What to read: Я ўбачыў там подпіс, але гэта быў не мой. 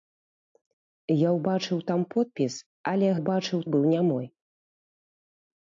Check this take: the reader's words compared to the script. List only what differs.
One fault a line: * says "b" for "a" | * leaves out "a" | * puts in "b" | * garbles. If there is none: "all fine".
* says "ўбачыў" for "гэта"